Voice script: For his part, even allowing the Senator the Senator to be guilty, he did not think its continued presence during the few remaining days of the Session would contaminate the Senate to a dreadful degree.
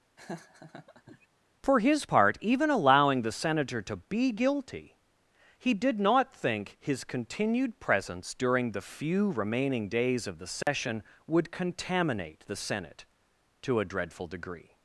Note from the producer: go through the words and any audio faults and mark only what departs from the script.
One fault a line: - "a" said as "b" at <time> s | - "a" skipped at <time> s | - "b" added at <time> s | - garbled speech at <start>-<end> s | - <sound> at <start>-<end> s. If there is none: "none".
- laugh at 0.2-1.3 s
- "the Senator" skipped at 3.8 s
- "its" said as "his" at 6.8 s
- dropout at 10.6-10.7 s